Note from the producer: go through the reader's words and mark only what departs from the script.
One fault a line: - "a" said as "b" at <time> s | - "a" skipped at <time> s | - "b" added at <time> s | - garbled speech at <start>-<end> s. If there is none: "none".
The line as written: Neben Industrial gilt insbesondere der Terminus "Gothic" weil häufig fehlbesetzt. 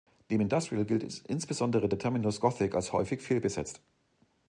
- "weil" said as "als" at 2.7 s